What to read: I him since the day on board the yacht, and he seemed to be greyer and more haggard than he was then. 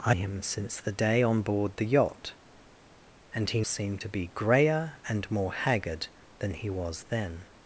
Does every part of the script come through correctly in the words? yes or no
yes